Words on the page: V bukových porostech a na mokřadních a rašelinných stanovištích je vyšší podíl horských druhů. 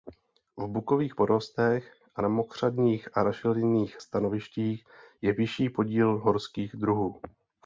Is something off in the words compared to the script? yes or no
no